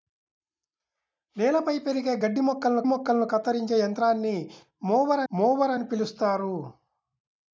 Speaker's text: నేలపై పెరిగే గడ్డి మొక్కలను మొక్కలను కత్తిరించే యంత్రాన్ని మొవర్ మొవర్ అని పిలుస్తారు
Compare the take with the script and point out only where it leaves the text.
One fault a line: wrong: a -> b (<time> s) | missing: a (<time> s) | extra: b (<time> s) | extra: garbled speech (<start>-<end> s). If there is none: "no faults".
no faults